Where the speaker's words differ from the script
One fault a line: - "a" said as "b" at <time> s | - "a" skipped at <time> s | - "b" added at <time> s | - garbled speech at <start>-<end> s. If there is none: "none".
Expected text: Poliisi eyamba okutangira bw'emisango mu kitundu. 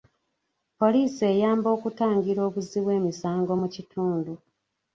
- "obuzzi" added at 2.5 s